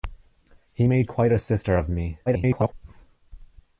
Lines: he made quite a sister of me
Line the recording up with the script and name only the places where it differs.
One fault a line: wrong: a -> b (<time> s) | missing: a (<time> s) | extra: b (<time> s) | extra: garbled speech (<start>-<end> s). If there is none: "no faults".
extra: garbled speech (2.3-2.7 s)